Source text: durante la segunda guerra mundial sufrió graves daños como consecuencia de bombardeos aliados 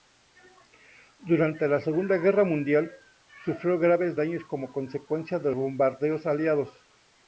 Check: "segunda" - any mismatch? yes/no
no